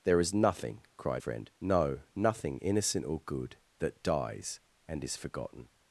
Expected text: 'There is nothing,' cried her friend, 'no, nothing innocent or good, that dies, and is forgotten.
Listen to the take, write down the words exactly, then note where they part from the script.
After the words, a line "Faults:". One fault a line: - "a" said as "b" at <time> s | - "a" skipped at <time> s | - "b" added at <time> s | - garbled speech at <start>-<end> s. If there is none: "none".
'There is nothing,' cried friend, 'no, nothing innocent or good, that dies, and is forgotten.
Faults:
- "her" skipped at 1.2 s